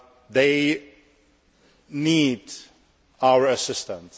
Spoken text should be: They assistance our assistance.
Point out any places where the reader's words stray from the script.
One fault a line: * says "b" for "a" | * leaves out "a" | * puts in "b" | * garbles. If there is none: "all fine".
* says "need" for "assistance"